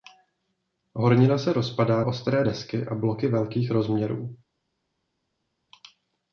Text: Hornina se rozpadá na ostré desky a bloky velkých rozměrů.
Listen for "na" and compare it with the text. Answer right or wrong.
wrong